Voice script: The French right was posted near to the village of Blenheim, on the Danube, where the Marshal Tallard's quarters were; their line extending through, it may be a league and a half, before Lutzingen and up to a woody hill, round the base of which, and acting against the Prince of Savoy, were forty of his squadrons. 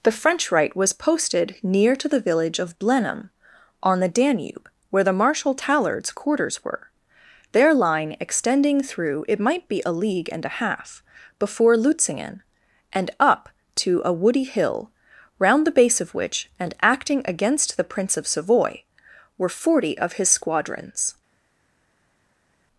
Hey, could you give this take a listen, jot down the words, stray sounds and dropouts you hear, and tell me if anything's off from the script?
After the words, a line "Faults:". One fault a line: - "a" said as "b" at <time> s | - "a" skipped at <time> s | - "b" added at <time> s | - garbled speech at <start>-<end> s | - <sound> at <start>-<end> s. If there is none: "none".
The French right was posted near to the village of Blenheim, on the Danube, where the Marshal Tallard's quarters were; their line extending through, it might be a league and a half, before Lutzingen and up to a woody hill, round the base of which, and acting against the Prince of Savoy, were forty of his squadrons.
Faults:
- "may" said as "might" at 9.4 s